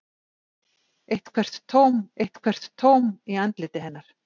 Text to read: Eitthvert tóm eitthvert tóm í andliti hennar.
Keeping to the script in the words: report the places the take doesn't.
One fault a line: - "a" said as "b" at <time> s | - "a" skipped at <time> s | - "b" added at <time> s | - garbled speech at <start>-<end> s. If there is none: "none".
none